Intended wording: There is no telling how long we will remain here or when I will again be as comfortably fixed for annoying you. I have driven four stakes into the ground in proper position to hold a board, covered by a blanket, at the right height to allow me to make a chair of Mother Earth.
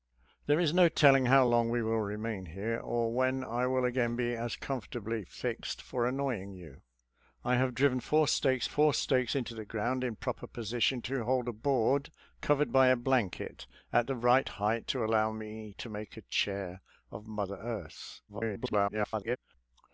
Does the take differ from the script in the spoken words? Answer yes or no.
yes